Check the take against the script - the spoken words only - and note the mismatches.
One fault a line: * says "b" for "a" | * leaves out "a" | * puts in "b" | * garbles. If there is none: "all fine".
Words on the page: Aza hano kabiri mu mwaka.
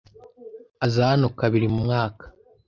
all fine